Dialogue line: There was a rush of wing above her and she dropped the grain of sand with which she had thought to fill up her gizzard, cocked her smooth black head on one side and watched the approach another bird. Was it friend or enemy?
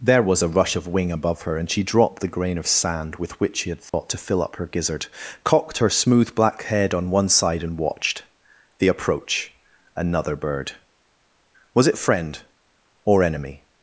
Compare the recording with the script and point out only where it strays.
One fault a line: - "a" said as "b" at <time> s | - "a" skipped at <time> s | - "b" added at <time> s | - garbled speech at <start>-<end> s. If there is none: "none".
none